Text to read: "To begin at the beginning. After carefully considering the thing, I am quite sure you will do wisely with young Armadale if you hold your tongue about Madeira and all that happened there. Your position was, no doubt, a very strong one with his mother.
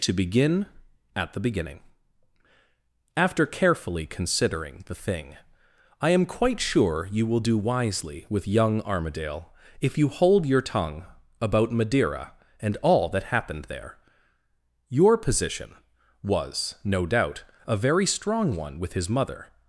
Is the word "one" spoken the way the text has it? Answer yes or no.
yes